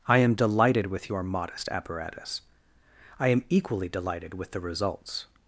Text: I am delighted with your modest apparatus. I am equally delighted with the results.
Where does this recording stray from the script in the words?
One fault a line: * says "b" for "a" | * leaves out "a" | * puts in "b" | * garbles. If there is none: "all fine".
all fine